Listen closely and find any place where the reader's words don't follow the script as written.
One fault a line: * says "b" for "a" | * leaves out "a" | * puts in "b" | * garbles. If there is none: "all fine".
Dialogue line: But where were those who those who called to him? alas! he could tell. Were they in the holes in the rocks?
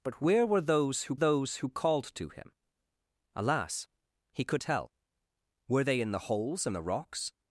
all fine